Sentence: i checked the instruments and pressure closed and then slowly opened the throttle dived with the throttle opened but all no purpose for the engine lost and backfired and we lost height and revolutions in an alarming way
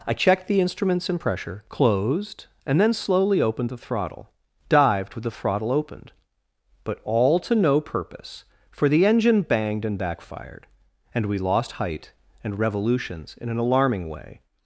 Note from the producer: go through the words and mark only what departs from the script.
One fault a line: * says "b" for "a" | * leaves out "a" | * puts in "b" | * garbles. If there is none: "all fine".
* puts in "to"
* says "banged" for "lost"